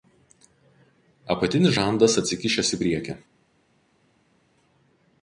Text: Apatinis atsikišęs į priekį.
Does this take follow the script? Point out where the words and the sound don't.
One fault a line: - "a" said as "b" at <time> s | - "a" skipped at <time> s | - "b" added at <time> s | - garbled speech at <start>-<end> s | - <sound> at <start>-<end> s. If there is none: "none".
- "žandas" added at 1.7 s